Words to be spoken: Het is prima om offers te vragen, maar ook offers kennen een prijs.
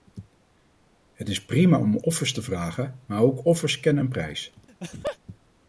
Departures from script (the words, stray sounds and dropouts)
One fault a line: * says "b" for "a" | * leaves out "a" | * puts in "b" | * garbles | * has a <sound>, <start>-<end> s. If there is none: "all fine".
* has a laugh, 4.7-5.2 s